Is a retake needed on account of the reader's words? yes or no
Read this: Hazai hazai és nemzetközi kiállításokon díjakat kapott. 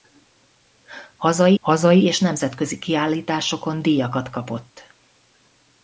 no